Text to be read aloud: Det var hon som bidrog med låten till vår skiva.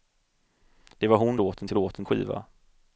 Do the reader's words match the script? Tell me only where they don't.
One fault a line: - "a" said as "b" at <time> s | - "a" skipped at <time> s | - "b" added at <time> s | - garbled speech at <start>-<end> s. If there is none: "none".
- "som bidrog med" skipped at 1.4 s
- "vår" said as "låten" at 1.7 s